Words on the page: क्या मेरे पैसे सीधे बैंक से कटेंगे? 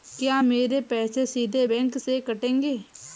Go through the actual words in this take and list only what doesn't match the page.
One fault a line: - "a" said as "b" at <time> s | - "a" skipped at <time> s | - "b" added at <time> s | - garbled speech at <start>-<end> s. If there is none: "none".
none